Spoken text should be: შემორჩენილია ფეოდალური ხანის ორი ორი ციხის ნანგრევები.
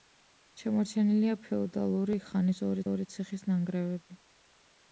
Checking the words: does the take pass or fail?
pass